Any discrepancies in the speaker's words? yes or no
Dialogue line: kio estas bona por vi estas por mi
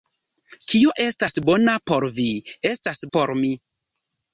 no